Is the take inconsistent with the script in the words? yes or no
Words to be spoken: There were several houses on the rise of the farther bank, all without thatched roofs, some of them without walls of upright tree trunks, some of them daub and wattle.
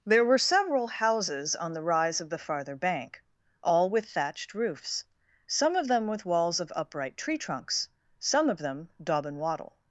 yes